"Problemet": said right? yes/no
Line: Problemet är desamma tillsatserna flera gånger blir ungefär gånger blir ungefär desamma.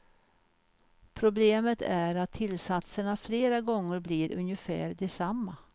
yes